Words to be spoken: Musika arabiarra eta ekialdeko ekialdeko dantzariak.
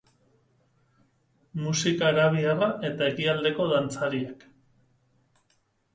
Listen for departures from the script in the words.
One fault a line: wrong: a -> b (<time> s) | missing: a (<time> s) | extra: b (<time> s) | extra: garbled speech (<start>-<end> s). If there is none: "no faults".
missing: ekialdeko (3.7 s)